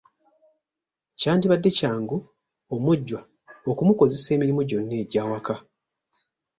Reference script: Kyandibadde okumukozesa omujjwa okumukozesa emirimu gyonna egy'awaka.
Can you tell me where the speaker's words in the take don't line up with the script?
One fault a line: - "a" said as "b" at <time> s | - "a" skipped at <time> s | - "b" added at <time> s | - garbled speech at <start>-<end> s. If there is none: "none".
- "okumukozesa" said as "kyangu" at 1.8 s